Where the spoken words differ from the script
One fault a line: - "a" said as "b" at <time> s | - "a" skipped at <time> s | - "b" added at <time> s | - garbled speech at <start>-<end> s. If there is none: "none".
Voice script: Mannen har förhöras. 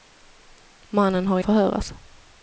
none